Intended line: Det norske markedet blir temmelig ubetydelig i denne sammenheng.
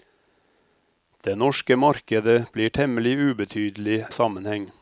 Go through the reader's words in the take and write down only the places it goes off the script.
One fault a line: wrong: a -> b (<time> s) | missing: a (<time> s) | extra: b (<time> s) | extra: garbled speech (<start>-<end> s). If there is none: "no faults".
missing: i denne (4.0 s)